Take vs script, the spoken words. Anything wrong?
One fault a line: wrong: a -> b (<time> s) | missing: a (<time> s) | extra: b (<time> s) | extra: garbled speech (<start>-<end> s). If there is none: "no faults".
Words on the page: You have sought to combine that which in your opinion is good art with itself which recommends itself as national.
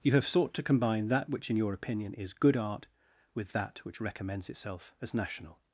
wrong: itself -> that (3.5 s)